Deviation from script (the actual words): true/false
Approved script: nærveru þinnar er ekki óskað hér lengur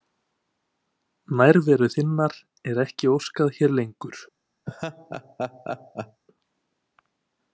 false